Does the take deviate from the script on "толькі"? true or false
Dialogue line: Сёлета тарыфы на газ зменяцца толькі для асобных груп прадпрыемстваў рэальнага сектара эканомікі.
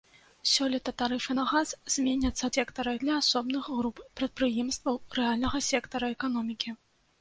true